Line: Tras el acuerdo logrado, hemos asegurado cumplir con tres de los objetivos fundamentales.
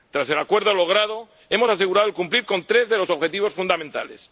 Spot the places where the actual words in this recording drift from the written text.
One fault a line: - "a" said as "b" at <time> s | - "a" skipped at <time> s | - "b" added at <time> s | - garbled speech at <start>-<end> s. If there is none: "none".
none